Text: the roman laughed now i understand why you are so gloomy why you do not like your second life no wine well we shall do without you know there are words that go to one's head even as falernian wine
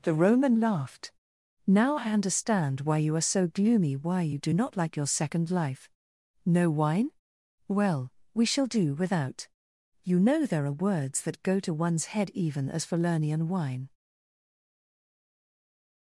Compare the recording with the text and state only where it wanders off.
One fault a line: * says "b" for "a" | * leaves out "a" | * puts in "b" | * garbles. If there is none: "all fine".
all fine